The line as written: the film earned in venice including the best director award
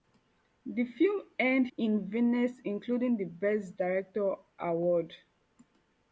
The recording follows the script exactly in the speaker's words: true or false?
true